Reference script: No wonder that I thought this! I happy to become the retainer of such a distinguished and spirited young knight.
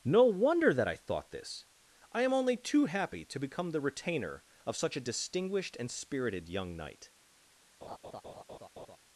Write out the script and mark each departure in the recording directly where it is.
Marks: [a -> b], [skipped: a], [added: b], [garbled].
No wonder that I thought this! I [added: am only too] happy to become the retainer of such a distinguished and spirited young knight.